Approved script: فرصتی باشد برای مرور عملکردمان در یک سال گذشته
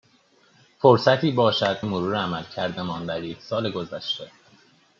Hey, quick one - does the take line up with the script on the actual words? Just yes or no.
no